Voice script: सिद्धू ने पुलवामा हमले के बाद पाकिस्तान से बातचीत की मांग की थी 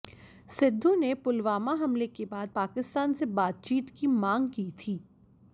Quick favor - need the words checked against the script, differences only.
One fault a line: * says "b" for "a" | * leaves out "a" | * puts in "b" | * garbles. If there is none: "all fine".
all fine